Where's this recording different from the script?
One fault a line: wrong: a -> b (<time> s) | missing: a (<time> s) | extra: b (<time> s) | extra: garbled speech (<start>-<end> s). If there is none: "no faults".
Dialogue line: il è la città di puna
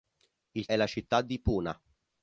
no faults